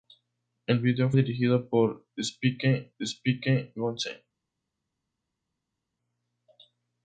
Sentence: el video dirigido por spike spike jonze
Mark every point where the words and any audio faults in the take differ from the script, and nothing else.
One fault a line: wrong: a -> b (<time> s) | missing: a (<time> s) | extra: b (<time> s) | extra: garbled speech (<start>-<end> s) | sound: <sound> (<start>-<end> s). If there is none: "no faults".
no faults